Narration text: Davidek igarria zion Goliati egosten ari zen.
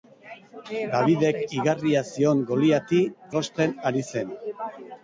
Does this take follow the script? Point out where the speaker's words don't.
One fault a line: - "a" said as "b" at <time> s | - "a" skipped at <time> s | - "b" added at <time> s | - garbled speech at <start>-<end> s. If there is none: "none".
none